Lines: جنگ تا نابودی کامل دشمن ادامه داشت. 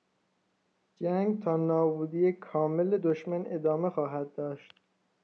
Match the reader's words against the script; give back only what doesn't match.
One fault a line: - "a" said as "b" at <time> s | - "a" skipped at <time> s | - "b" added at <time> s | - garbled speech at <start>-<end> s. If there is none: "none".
- "خواهد" added at 3.9 s